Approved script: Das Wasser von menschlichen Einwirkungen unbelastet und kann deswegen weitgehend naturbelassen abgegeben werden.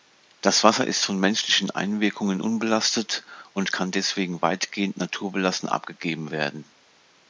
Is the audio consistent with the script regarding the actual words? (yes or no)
no